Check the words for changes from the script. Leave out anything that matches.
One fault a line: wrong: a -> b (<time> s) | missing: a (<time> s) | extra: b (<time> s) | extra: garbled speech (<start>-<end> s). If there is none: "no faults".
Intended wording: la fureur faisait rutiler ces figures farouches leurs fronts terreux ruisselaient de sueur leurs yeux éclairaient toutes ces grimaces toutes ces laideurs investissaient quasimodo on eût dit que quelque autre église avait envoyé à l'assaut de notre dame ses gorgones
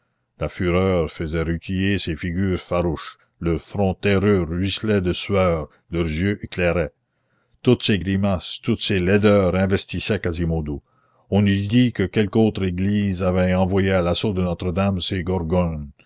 no faults